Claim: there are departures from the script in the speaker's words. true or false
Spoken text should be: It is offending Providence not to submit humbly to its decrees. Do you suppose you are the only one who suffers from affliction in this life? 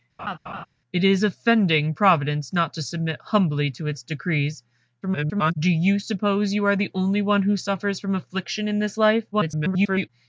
true